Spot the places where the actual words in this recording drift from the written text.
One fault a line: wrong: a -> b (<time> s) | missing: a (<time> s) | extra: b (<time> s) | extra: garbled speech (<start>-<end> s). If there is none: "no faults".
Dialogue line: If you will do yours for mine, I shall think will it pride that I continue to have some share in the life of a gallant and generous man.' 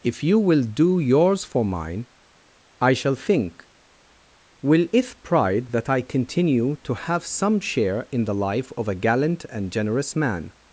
no faults